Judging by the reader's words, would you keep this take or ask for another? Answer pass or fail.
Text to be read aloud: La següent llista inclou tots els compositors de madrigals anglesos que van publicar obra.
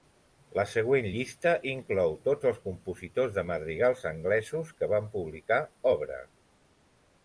pass